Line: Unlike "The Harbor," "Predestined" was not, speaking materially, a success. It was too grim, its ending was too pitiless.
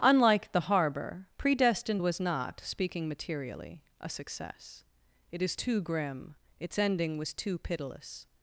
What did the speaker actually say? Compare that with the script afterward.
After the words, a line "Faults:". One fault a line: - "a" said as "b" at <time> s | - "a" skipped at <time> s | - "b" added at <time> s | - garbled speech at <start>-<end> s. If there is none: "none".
Unlike "The Harbor," "Predestined" was not, speaking materially, a success. It is too grim, its ending was too pitiless.
Faults:
- "was" said as "is" at 5.4 s